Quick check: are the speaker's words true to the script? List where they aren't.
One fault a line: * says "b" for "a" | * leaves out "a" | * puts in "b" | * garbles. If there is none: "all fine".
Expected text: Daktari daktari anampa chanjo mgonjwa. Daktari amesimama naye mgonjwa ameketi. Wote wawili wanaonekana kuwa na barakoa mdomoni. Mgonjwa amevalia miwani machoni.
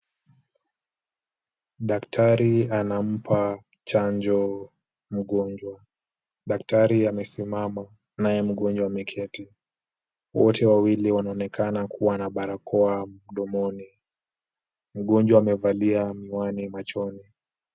* leaves out "daktari"